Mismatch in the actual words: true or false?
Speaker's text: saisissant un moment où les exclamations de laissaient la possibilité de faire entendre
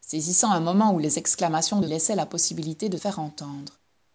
false